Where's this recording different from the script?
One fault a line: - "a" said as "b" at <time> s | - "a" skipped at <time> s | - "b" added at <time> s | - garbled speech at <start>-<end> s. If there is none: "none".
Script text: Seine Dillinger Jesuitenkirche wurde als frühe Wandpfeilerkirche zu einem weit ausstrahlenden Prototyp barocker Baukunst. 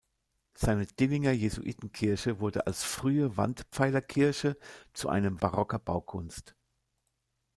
- "weit ausstrahlenden Prototyp" skipped at 5.4 s